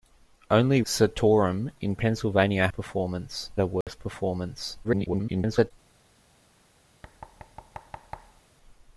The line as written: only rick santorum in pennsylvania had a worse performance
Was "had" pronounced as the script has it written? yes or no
no